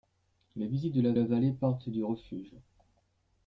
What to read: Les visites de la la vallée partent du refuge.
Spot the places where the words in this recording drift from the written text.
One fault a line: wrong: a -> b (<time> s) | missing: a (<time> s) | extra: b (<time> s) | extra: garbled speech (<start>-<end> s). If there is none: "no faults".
no faults